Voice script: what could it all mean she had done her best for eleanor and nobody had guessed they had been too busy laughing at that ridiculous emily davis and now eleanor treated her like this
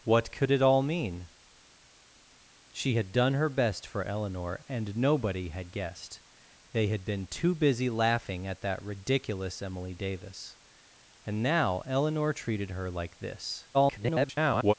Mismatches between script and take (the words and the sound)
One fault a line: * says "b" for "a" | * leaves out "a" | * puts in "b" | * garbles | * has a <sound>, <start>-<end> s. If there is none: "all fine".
* garbles